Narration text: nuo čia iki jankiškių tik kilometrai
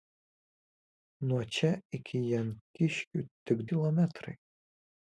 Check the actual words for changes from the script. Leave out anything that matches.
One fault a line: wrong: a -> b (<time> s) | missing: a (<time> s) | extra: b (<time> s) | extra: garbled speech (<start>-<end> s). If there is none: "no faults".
no faults